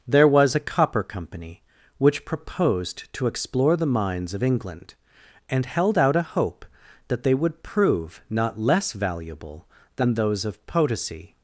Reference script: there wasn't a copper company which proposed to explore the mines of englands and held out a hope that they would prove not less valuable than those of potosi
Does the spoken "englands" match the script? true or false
false